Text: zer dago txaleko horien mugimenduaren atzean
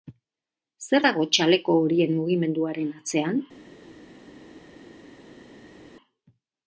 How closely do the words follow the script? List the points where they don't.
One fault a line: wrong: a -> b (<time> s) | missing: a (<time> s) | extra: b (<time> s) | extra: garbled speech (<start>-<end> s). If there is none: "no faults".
no faults